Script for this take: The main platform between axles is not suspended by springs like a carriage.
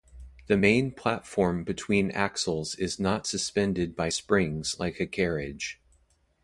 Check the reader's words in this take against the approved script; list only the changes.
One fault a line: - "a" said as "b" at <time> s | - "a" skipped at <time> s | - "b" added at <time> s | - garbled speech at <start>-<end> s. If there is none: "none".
none